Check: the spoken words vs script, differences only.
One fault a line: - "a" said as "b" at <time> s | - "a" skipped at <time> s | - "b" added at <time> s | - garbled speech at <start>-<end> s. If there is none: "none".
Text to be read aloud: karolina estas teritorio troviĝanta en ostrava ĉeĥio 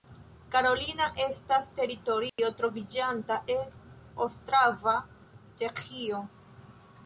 none